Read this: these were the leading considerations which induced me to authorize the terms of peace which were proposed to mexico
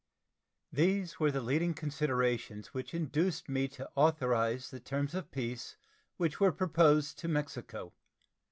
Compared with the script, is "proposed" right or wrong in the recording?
right